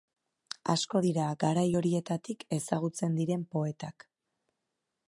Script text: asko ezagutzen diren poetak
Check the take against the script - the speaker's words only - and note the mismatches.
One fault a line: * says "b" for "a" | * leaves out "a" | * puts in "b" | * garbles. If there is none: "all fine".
* puts in "dira garai horietatik"